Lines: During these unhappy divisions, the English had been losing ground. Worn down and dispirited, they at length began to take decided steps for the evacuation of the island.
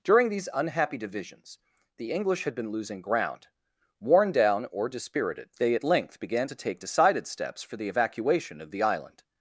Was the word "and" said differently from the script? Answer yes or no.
yes